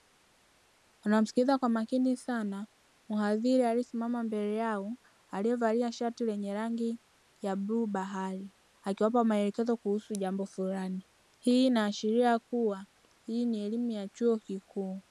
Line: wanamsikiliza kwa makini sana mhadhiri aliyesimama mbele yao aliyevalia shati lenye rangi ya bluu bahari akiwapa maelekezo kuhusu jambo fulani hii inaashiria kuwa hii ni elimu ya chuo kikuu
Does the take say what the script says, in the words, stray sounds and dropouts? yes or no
yes